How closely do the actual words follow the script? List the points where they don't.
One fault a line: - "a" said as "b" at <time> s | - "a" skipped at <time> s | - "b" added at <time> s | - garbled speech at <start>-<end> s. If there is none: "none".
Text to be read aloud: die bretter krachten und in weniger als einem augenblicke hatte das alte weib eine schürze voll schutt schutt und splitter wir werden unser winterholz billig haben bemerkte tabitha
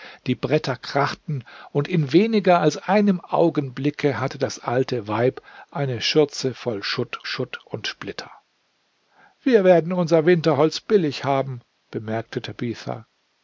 none